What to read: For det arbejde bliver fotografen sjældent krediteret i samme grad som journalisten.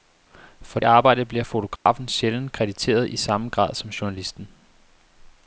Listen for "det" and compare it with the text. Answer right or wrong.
wrong